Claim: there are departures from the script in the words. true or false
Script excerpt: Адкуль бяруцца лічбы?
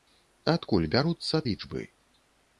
false